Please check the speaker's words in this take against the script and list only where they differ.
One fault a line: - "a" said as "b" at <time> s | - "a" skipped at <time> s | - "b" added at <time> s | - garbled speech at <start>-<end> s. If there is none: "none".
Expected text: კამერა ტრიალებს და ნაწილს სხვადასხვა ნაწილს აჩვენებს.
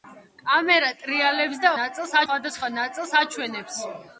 none